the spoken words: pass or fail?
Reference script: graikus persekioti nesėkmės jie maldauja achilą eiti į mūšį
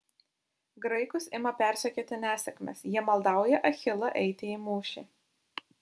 fail